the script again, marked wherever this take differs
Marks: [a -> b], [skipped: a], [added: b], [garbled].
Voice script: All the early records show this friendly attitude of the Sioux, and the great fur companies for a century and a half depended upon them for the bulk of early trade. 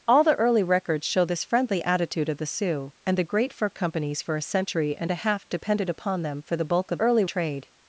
All the early records show this friendly attitude of the Sioux, and the great fur companies for a century and a half depended upon them for the bulk of early trade.